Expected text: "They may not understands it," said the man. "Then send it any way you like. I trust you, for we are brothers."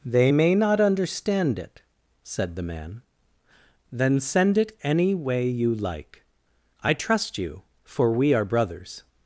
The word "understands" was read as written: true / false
false